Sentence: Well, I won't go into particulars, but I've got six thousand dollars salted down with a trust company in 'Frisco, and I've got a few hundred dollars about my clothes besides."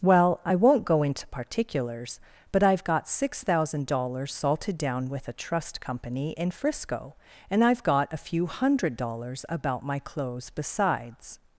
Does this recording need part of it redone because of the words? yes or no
no